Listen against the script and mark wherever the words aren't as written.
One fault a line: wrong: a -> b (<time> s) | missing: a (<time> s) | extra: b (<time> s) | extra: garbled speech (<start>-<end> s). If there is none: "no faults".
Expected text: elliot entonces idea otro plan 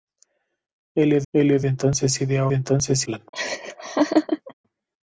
extra: elliot (1.3 s)
wrong: otro -> entonces (2.5 s)